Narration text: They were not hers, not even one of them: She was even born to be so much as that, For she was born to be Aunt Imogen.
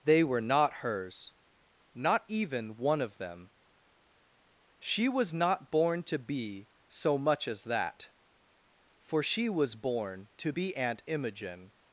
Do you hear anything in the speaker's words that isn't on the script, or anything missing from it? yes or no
yes